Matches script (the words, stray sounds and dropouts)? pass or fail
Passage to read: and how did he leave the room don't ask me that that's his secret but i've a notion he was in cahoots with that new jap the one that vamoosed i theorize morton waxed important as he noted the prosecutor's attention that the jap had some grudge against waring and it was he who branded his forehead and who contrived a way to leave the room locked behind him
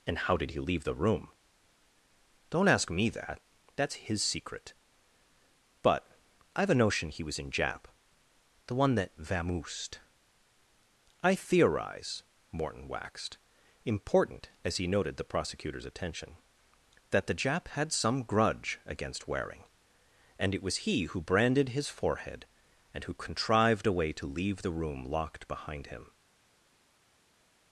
fail